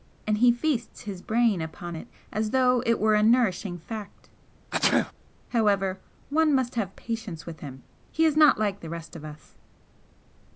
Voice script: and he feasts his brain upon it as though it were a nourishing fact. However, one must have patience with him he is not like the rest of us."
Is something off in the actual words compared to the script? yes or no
no